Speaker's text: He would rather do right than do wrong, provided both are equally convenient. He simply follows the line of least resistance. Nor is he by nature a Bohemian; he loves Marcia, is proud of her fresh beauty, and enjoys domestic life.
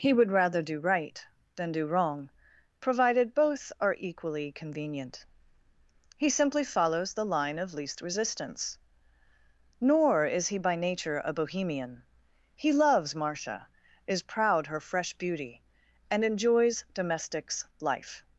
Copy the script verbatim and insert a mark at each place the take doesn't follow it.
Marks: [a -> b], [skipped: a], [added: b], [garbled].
He would rather do right than do wrong, provided both are equally convenient. He simply follows the line of least resistance. Nor is he by nature a Bohemian; he loves Marcia, is proud [skipped: of] her fresh beauty, and enjoys [domestic -> domestics] life.